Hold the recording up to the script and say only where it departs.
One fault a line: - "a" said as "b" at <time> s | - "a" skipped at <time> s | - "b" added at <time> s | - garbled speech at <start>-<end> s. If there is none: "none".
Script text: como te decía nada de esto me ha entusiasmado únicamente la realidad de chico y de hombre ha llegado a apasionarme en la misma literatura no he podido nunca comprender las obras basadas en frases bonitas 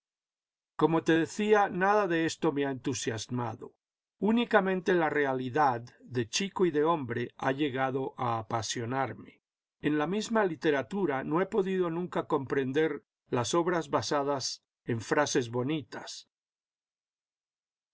none